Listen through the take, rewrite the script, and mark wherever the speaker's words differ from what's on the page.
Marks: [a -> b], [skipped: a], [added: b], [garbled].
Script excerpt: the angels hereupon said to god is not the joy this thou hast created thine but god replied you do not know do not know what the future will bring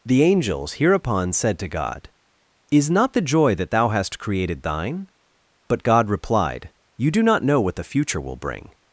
the angels hereupon said to god is not the joy [this -> that] thou hast created thine but god replied you do not know [skipped: do not know] what the future will bring